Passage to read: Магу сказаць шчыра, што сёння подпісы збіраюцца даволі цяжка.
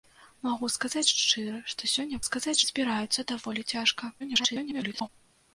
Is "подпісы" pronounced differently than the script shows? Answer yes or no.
yes